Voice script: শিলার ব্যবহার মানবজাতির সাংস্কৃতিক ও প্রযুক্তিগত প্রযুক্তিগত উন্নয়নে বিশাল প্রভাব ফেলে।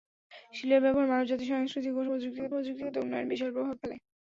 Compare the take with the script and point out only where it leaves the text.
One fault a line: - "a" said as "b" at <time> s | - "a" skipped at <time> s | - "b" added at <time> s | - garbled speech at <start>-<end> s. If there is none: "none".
none